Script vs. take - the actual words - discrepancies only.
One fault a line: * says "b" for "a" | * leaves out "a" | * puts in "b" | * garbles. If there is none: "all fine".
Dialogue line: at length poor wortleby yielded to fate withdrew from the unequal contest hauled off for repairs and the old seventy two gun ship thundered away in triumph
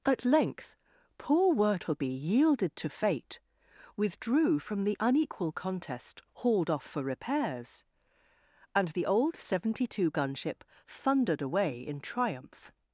all fine